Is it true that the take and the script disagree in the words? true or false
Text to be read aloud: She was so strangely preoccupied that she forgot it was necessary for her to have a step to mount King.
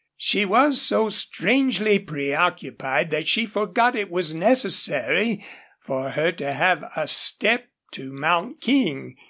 false